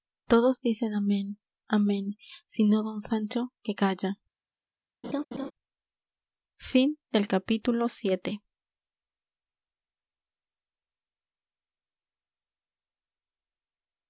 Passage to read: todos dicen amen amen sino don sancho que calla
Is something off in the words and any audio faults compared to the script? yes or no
yes